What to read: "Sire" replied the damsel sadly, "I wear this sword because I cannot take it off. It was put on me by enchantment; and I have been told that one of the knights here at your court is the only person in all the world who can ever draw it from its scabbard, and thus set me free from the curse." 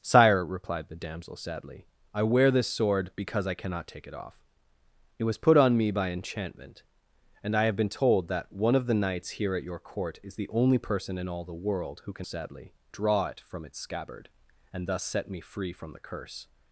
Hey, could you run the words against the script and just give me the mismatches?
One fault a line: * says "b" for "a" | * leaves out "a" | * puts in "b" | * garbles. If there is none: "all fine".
* says "sadly" for "ever"